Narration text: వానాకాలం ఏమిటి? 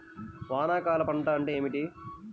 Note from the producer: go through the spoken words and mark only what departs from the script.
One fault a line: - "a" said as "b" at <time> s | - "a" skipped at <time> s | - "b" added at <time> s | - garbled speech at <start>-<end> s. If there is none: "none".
- "పంట అంటే" added at 1.0 s